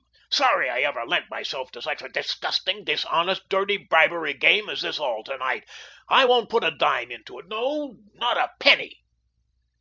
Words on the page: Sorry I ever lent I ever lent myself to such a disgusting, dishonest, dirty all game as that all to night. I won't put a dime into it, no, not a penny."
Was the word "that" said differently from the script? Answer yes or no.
yes